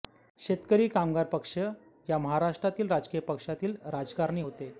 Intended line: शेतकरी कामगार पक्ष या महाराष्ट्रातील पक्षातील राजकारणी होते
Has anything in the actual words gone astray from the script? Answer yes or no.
yes